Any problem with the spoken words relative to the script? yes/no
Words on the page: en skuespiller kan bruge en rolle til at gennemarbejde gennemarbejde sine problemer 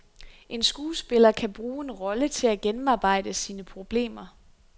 yes